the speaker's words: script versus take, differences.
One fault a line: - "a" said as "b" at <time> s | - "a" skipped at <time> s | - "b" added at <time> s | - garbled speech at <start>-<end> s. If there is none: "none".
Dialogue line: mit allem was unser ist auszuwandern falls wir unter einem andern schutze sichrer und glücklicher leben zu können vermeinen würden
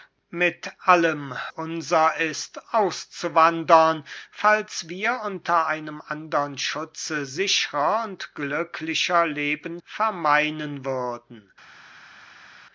- "was" skipped at 1.4 s
- "zu können" skipped at 9.8 s